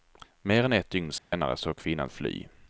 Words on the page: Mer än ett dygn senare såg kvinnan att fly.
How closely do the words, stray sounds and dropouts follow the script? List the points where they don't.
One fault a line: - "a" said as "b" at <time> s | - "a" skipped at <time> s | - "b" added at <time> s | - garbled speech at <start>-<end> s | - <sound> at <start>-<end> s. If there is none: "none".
- dropout at 1.2-1.3 s